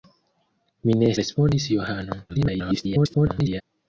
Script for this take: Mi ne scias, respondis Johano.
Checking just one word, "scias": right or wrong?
wrong